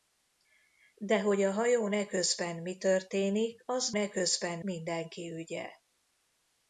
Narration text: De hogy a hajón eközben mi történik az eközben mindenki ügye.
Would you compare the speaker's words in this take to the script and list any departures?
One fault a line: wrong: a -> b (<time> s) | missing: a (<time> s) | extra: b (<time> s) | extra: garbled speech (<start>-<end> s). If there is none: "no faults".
no faults